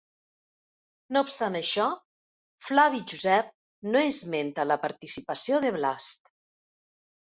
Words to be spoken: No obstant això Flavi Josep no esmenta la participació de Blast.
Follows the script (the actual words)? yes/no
yes